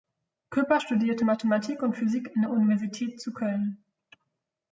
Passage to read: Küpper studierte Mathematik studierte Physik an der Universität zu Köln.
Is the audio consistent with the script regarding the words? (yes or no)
no